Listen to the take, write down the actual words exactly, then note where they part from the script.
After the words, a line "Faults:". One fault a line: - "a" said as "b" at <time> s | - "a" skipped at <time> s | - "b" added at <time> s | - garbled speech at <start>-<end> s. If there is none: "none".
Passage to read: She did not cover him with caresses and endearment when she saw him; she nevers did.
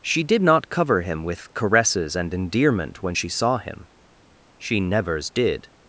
She did not cover him with caresses and endearment when she saw him; she nevers did.
Faults:
none